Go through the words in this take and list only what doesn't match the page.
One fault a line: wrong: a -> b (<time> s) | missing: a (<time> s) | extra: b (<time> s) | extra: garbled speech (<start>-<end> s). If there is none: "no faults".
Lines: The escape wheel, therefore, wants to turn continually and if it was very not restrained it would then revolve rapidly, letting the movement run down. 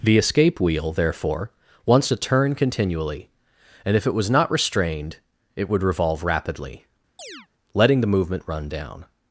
missing: very (4.3 s)
missing: then (5.8 s)